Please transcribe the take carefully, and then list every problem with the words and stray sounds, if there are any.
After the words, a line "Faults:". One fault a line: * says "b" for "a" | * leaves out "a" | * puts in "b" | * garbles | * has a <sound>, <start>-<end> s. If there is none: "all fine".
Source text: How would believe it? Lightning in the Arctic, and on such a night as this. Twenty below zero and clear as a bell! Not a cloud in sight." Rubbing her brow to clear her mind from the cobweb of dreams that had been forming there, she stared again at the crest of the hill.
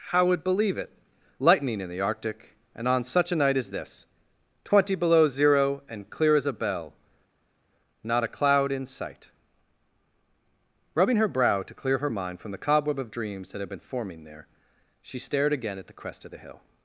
How would believe it? Lightning in the Arctic, and on such a night as this. Twenty below zero and clear as a bell! Not a cloud in sight." Rubbing her brow to clear her mind from the cobweb of dreams that had been forming there, she stared again at the crest of the hill.
Faults:
all fine